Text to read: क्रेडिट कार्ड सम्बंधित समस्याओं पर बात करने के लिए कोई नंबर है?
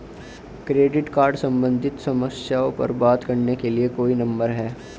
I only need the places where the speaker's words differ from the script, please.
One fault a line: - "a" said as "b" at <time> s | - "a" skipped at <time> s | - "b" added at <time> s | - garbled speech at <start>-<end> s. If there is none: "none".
none